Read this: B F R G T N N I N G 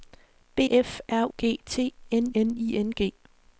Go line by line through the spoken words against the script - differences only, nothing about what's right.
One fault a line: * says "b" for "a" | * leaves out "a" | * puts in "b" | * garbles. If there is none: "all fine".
all fine